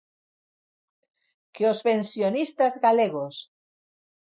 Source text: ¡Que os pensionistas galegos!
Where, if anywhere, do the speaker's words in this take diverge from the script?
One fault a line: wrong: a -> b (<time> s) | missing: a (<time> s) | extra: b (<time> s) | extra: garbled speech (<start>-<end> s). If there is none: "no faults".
no faults